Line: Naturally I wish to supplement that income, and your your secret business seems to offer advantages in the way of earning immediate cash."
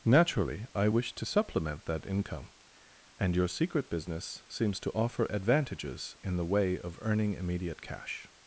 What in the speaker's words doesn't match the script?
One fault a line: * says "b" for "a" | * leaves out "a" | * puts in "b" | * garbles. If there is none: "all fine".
* leaves out "your"